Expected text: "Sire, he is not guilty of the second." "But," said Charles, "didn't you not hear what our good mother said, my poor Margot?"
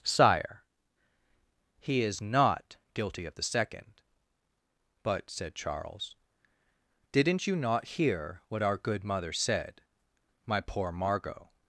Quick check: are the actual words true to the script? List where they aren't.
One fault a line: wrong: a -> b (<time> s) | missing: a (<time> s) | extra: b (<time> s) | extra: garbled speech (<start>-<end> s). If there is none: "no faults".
no faults